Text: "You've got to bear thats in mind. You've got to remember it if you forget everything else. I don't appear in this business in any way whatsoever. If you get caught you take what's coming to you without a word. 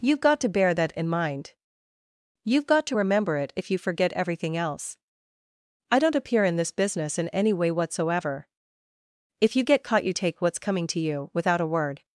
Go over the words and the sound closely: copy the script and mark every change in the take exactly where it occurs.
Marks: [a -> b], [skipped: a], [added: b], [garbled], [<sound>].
"You've got to bear [thats -> that] in mind. You've got to remember it if you forget everything else. I don't appear in this business in any way whatsoever. If you get caught you take what's coming to you without a word.